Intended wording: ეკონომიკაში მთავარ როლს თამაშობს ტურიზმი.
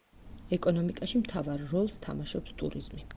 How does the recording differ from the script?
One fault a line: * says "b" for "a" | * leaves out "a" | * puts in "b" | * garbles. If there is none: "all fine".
all fine